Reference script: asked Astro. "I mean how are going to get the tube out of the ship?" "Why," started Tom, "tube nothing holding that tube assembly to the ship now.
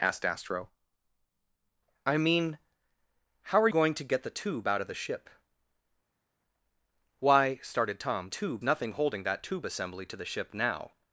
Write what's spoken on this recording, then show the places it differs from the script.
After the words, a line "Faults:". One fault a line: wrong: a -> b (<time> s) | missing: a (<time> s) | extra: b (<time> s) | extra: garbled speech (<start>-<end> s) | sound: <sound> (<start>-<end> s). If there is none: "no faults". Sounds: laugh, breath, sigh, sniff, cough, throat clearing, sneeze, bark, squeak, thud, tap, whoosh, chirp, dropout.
asked Astro. "I mean how are going to get the tube out of the ship?" "Why," started Tom, "tube nothing holding that tube assembly to the ship now.
Faults:
no faults